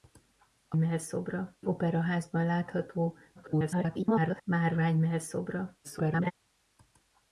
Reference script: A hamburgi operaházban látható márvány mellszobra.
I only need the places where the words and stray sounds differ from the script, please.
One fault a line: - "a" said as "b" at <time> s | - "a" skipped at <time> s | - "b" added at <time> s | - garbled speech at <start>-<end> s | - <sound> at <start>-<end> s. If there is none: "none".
- "hamburgi" said as "mellszobra" at 0.8 s
- garbled speech at 3.3-4.4 s
- garbled speech at 5.8-6.3 s